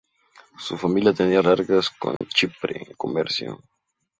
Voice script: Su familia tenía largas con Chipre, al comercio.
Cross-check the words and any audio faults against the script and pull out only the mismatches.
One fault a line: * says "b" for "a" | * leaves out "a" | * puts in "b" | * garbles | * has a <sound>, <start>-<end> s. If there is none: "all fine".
* has a dropout, 2.2-2.2 s